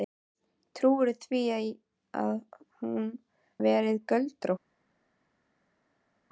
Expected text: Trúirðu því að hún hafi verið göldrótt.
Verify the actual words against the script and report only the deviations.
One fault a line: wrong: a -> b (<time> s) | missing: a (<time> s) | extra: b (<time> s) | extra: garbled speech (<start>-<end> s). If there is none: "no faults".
missing: hafi (3.1 s)